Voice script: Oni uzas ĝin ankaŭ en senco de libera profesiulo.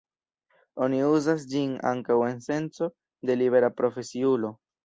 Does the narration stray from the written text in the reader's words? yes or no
no